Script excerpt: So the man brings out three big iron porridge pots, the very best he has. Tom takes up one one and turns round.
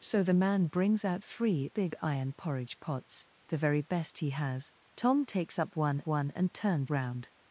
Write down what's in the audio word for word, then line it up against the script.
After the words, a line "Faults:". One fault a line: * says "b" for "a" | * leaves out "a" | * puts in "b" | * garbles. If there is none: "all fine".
So the man brings out three big iron porridge pots, the very best he has. Tom takes up one one and turns round.
Faults:
all fine